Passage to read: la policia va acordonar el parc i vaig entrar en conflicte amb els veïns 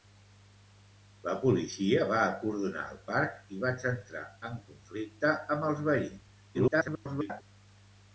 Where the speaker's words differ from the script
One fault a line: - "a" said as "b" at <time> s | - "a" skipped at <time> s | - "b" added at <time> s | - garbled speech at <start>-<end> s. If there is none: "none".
- garbled speech at 6.5-7.4 s